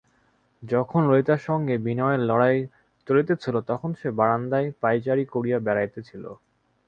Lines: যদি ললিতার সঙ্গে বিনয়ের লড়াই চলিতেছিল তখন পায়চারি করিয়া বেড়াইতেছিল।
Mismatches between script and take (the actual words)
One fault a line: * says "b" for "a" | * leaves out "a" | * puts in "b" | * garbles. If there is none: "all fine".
* says "যখন" for "যদি"
* puts in "সে বারান্দায়"